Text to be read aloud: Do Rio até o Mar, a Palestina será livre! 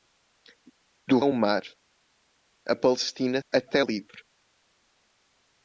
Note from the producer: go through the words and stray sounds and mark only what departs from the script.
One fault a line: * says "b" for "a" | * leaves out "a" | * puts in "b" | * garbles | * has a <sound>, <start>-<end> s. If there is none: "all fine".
* leaves out "Rio até"
* says "até" for "será"